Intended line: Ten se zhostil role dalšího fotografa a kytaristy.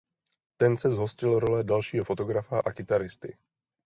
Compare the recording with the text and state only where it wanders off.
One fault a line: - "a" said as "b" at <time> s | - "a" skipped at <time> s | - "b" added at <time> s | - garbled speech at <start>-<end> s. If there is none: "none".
none